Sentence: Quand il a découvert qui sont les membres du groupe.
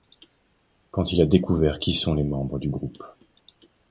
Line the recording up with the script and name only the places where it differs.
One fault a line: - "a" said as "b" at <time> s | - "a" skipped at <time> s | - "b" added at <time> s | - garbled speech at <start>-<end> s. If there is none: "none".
none